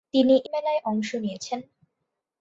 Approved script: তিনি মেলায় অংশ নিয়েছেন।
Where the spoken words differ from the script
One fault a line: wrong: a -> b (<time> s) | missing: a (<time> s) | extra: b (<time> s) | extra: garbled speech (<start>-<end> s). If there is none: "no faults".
no faults